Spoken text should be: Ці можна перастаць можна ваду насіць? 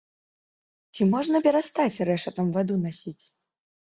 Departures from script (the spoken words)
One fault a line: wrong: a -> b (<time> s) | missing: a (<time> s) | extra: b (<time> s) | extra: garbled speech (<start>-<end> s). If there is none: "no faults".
wrong: можна -> рэшатам (2.1 s)